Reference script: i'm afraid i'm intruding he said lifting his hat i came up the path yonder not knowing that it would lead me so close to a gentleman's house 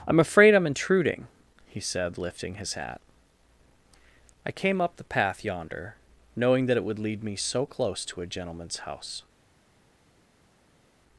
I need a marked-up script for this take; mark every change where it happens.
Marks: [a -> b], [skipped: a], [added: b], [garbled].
i'm afraid i'm intruding he said lifting his hat i came up the path yonder [skipped: not] knowing that it would lead me so close to a gentleman's house